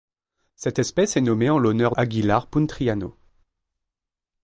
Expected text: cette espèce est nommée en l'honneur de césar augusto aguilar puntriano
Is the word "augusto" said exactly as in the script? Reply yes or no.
no